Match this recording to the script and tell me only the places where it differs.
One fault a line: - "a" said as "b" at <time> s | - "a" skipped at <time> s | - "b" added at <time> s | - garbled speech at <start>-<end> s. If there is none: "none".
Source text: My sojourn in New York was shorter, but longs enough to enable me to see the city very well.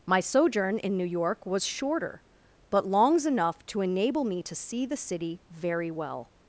none